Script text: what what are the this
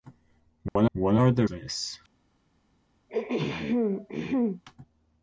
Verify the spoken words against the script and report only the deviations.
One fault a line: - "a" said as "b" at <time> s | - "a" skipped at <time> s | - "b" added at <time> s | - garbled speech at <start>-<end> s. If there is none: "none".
none